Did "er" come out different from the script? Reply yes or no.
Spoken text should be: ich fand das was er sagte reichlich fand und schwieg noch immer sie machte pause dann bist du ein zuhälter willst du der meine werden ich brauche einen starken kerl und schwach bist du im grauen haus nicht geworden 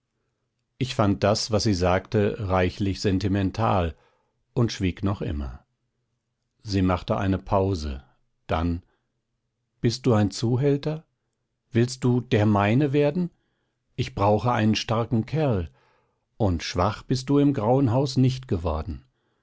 yes